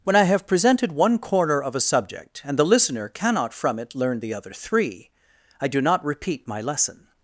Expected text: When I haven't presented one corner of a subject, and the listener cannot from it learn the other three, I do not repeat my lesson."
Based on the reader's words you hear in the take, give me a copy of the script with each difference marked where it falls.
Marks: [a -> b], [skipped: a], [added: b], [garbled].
When I [haven't -> have] presented one corner of a subject, and the listener cannot from it learn the other three, I do not repeat my lesson."